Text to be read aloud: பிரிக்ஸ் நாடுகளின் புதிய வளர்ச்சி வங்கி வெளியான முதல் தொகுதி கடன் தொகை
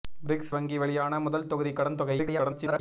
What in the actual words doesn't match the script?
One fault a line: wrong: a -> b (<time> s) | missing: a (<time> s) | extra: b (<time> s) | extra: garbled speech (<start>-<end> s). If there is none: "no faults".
missing: நாடுகளின் புதிய வளர்ச்சி (0.5 s)
extra: garbled speech (2.2-2.8 s)